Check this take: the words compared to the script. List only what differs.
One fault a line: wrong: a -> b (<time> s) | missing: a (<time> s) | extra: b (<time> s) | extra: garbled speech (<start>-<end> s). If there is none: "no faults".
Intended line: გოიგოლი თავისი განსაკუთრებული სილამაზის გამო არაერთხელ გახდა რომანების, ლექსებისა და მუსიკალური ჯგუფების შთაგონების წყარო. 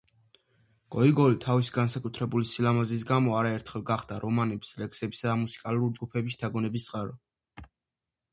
no faults